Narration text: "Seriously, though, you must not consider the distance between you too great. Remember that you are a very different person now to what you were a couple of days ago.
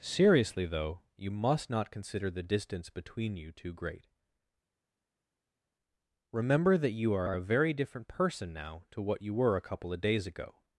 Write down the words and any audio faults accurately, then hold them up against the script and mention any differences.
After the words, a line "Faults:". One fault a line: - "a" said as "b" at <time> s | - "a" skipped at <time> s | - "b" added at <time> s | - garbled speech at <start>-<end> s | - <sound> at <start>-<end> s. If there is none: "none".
"Seriously, though, you must not consider the distance between you too great. Remember that you are are a very different person now to what you were a couple of days ago.
Faults:
- "are" added at 7.2 s